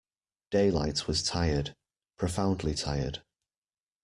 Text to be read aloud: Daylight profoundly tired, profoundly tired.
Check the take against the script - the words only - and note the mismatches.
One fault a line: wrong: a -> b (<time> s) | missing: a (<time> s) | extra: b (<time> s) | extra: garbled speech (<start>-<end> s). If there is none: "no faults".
wrong: profoundly -> was (1.1 s)